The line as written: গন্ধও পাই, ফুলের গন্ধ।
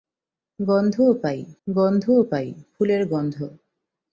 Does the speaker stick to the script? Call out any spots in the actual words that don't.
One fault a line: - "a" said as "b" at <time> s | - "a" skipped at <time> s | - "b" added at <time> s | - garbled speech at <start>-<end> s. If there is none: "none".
- "গন্ধও পাই" added at 1.7 s